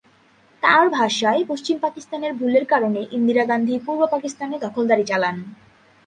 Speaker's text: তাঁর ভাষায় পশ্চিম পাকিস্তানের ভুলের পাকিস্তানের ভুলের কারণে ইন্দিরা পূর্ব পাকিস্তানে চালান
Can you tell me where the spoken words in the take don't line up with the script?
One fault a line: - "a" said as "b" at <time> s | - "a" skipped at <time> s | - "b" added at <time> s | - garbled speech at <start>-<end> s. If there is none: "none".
- "পাকিস্তানের ভুলের" skipped at 2.6 s
- "গান্ধী" added at 3.4 s
- "দখলদারি" added at 4.6 s